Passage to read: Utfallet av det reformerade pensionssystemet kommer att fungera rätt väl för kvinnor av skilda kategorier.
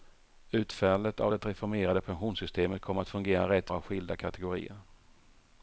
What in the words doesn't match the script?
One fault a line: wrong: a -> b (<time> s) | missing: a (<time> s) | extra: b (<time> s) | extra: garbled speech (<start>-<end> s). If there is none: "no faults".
missing: väl för kvinnor (3.7 s)